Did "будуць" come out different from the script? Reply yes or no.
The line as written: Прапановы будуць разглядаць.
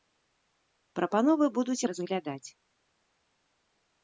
no